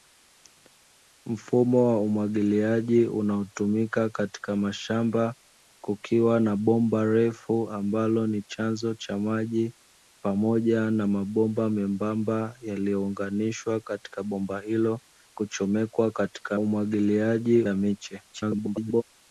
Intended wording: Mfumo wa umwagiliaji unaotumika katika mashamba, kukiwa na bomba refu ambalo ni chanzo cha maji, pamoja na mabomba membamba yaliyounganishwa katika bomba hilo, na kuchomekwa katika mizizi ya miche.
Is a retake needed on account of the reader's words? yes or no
yes